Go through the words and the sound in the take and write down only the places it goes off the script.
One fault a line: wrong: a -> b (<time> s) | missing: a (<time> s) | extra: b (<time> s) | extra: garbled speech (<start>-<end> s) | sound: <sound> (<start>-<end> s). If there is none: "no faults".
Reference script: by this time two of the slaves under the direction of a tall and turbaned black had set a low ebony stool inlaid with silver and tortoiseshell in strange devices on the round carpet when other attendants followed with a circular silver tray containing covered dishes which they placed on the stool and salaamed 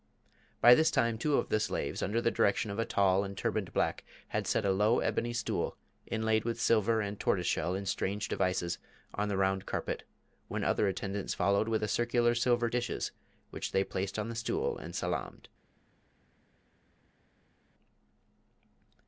missing: tray containing covered (12.7 s)